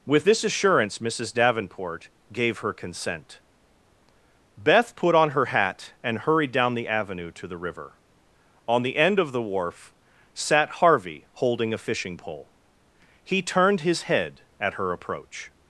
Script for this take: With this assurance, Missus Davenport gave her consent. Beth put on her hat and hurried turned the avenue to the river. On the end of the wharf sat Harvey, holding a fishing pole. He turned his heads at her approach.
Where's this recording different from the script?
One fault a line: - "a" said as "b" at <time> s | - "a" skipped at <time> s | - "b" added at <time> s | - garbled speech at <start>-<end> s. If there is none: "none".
- "turned" said as "down" at 6.5 s
- "heads" said as "head" at 14.0 s